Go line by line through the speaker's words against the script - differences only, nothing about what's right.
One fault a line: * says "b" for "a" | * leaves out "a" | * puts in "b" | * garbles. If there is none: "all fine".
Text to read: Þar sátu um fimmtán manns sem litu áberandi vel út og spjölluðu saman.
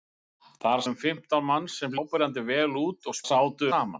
* leaves out "sátu"
* leaves out "litu"
* says "sátu" for "spjölluðu"